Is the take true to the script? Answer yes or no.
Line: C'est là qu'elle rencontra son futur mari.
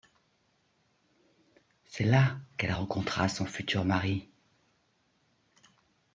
yes